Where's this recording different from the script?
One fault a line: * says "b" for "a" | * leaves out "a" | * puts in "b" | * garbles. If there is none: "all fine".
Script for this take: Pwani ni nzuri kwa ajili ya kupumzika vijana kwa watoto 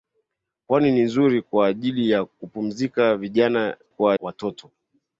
all fine